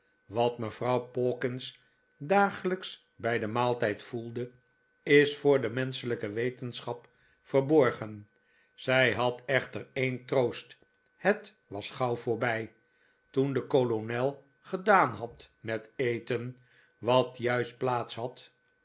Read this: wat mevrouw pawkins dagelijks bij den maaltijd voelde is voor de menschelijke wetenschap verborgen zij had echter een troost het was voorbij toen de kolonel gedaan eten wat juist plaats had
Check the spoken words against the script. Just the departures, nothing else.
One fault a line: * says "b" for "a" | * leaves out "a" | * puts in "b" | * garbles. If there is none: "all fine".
* puts in "gauw"
* puts in "had met"